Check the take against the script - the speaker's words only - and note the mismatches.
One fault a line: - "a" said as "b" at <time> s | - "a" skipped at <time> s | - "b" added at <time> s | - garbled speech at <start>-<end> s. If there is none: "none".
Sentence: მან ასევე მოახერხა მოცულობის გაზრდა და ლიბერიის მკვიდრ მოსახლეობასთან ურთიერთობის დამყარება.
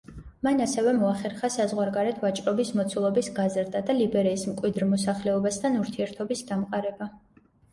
- "საზღვარგარეთ ვაჭრობის" added at 1.5 s